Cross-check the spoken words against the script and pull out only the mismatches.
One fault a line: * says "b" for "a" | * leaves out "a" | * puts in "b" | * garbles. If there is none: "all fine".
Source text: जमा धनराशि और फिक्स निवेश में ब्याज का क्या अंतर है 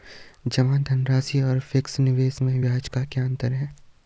all fine